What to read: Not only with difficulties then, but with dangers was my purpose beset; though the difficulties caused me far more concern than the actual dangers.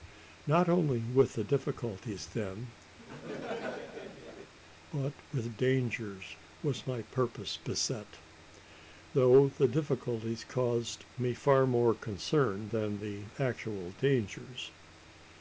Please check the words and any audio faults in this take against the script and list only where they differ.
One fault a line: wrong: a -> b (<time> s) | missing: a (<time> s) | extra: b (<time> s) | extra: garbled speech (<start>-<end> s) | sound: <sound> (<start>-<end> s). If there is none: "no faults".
sound: laugh (3.0-4.5 s)